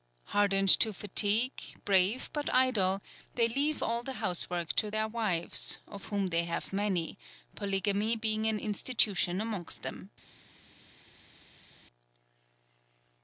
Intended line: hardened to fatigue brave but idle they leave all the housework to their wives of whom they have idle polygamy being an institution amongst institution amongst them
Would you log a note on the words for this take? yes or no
yes